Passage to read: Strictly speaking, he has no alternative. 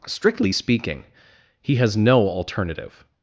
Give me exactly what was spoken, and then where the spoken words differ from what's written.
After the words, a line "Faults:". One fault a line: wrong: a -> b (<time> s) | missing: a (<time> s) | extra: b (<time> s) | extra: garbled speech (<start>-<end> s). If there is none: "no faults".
Strictly speaking, he has no alternative.
Faults:
no faults